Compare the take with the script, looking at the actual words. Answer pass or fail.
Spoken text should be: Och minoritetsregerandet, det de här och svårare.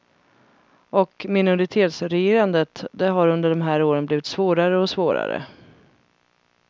fail